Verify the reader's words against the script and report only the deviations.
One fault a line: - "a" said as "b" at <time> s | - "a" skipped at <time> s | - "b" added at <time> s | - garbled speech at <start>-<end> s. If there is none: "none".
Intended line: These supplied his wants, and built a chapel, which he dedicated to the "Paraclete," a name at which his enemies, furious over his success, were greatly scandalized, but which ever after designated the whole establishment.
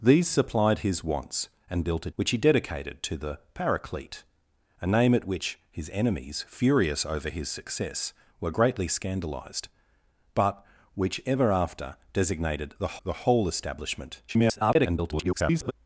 - "chapel" skipped at 2.1 s
- "the" added at 13.0 s
- garbled speech at 14.3-15.7 s